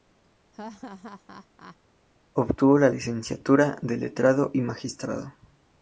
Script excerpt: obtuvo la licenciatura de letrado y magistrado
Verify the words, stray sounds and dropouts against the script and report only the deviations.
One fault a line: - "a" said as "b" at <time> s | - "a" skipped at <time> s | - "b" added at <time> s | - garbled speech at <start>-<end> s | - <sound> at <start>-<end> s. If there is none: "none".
- laugh at 0.5-1.8 s